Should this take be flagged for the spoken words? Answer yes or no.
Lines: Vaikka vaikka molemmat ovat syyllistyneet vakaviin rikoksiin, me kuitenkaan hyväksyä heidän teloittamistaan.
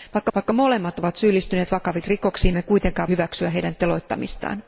no